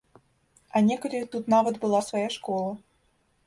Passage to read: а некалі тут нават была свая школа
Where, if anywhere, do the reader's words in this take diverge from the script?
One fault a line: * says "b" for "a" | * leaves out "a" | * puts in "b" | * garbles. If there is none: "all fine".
all fine